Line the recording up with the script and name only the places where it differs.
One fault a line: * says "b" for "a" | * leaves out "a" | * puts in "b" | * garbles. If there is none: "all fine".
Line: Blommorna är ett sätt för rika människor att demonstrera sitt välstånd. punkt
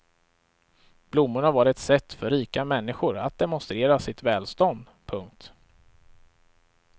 * says "var" for "är"